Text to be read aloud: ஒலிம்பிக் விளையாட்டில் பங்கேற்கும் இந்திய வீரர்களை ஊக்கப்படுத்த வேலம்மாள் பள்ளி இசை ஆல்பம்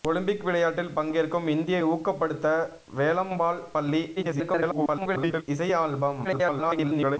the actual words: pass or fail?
fail